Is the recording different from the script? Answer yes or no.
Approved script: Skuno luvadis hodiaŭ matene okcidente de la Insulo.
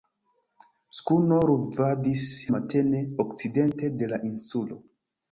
yes